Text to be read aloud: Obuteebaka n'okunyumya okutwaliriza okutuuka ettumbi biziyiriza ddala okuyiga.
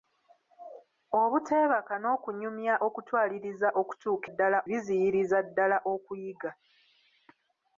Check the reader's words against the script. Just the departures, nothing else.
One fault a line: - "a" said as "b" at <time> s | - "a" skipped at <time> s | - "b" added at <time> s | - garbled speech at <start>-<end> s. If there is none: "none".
- "ettumbi" said as "ddala" at 4.3 s